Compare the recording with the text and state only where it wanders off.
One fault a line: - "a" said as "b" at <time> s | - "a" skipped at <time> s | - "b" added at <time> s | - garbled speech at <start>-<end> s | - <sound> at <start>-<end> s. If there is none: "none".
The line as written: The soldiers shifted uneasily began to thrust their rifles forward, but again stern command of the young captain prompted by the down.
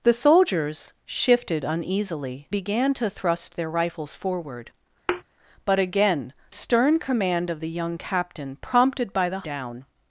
- thud at 5.1-5.2 s